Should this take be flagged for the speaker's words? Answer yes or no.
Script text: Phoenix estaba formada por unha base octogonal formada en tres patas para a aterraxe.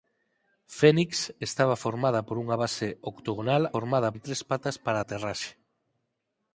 no